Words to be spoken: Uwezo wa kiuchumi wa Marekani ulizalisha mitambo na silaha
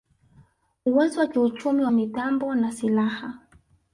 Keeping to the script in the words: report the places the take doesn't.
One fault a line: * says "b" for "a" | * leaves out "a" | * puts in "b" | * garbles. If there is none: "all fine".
* leaves out "Marekani ulizalisha"